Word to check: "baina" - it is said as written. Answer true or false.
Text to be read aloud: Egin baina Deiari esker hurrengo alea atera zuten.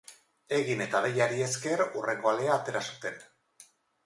false